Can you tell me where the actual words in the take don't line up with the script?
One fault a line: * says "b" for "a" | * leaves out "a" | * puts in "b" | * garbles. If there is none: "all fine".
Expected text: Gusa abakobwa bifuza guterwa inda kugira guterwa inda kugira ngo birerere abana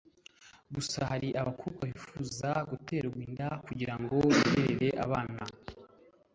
* puts in "hari"
* leaves out "guterwa inda kugira"